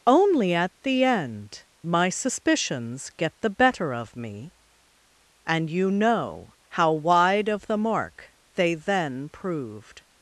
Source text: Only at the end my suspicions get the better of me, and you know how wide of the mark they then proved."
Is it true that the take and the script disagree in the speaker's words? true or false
false